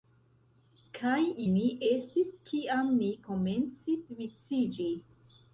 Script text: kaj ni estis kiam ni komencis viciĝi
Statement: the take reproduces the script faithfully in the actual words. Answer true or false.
true